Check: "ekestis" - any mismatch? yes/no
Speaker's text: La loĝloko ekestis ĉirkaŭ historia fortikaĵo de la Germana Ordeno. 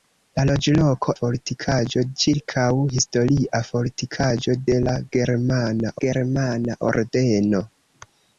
yes